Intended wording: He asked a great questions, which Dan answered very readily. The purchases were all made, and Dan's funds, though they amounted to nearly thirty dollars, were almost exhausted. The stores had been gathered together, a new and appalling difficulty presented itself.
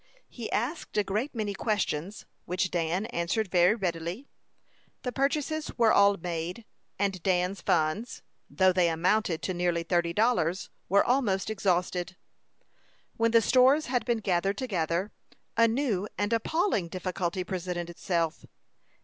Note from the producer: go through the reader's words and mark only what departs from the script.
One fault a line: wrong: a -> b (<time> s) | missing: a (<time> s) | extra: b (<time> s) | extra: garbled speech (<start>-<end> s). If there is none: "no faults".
extra: many (1.4 s)
extra: When (13.2 s)